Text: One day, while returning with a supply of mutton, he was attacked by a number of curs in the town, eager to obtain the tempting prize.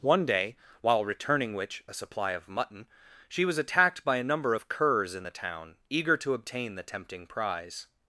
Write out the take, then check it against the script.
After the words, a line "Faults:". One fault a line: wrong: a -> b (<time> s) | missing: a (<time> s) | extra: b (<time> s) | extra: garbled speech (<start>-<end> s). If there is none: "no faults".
One day, while returning which a supply of mutton, she was attacked by a number of curs in the town, eager to obtain the tempting prize.
Faults:
wrong: with -> which (1.5 s)
wrong: he -> she (3.3 s)